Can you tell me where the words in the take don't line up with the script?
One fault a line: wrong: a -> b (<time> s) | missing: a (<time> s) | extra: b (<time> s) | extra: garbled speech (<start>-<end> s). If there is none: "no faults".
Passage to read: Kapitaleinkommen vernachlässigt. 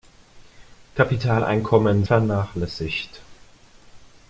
no faults